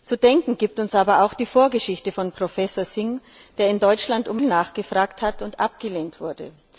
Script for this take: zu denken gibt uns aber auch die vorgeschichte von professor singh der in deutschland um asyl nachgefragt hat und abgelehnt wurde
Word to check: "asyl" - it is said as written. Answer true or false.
false